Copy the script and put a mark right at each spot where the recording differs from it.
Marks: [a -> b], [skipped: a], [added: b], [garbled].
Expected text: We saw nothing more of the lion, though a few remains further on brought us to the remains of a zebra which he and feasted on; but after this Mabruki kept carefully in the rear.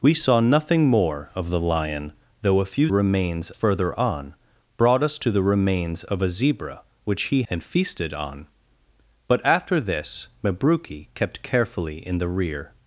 We saw nothing more of the lion, though a few remains further on brought us to the remains of a zebra which he and feasted on; but after this Mabruki kept carefully in the rear.